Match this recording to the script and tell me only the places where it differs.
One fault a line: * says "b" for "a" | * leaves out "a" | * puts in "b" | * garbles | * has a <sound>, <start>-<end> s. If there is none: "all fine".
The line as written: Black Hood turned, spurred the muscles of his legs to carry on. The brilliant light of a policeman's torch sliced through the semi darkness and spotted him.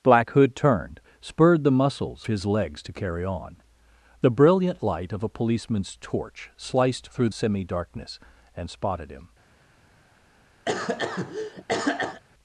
* leaves out "of"
* leaves out "the"
* has a cough, 10.7-12.2 s